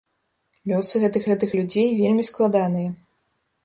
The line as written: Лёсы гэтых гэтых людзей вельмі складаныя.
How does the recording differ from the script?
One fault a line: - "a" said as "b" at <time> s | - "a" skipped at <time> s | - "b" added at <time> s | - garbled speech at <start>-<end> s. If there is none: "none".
none